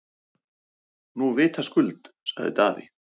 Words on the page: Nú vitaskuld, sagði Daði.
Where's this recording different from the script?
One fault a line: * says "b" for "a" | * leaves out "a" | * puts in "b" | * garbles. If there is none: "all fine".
all fine